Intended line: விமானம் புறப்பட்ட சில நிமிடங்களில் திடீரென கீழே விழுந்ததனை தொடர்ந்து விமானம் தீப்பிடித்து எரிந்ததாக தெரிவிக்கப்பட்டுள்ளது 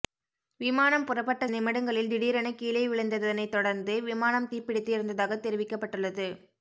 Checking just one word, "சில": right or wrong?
wrong